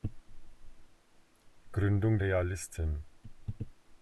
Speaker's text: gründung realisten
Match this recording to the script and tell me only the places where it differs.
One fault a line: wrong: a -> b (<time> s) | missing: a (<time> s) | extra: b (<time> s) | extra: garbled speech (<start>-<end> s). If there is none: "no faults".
no faults